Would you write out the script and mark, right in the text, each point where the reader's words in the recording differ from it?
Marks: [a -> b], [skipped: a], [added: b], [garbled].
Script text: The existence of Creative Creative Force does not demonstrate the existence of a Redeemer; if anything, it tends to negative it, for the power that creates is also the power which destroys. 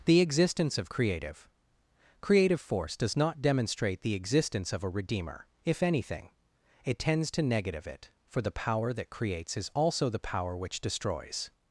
The existence of Creative Creative Force does not demonstrate the existence of a Redeemer; if anything, it tends to negative it, for the power that creates is also the power which destroys.